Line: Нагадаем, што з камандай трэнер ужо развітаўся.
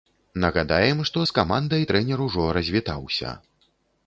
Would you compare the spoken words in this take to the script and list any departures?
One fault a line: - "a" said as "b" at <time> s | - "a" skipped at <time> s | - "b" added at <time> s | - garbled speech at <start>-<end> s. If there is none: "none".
none